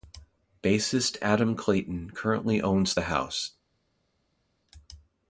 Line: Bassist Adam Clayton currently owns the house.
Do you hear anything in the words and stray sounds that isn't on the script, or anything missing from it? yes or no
no